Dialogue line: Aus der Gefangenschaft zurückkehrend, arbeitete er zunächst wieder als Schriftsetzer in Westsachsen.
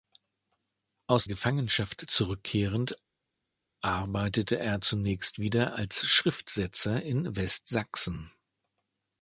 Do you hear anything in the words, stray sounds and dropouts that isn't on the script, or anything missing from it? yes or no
yes